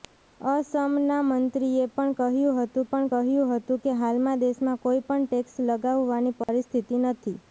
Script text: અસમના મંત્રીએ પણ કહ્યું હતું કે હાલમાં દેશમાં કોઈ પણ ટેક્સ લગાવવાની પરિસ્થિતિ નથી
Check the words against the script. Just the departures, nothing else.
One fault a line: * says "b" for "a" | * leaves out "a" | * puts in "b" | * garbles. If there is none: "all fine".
* puts in "પણ કહ્યું હતું"